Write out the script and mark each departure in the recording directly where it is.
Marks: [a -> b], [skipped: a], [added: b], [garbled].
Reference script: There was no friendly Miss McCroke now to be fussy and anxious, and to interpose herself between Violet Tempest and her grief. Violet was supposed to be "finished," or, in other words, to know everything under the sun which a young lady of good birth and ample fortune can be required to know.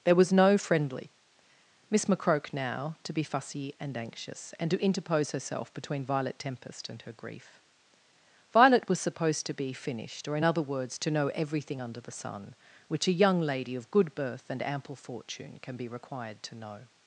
There was no friendly Miss McCroke now to be fussy and anxious, and to interpose herself between Violet Tempest and her grief. Violet was supposed to be "finished," or, in other words, to know everything under the sun which a young lady of good birth and ample fortune can be required to know.